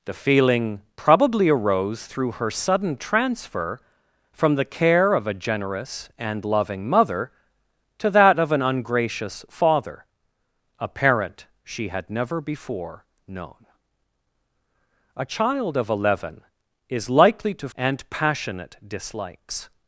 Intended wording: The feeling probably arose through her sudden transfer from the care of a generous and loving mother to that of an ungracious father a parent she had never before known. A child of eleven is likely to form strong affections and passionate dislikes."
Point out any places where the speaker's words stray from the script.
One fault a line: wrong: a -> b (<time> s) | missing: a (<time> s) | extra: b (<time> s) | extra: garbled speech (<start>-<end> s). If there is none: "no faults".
missing: form strong affections (17.7 s)